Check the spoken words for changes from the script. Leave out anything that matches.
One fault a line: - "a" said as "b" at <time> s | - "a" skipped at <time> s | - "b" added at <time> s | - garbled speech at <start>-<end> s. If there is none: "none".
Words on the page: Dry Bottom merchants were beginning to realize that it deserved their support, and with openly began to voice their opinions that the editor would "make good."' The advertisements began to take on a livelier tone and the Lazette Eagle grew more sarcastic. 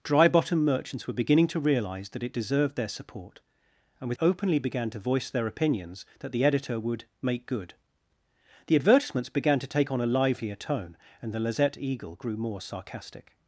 none